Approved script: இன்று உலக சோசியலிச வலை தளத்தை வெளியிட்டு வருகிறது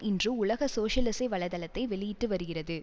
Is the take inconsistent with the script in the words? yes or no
no